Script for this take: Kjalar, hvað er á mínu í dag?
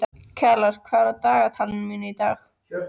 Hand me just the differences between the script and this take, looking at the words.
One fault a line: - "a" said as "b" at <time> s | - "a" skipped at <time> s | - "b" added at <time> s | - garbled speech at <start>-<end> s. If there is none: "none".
- "dagatalinu" added at 1.2 s